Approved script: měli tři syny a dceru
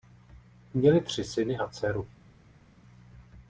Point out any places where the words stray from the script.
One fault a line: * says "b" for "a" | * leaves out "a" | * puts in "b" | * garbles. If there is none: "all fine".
all fine